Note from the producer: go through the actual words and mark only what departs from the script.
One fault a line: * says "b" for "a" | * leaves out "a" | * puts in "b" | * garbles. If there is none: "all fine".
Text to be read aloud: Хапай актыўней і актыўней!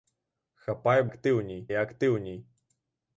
all fine